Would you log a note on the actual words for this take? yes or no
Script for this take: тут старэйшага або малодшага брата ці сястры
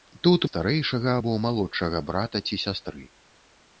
no